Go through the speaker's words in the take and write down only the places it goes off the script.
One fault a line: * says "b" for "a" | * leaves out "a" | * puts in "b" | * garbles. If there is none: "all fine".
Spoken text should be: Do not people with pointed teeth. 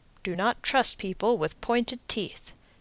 * puts in "trust"